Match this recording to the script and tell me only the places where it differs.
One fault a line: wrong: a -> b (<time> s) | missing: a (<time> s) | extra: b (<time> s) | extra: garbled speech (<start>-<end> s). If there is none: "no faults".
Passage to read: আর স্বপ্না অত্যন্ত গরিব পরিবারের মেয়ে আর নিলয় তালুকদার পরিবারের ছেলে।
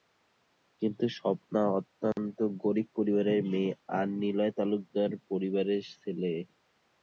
wrong: আর -> কিন্তু (0.8 s)